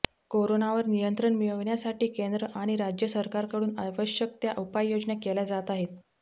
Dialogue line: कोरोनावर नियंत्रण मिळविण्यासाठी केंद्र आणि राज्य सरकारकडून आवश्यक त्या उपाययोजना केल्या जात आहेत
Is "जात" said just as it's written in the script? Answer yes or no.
yes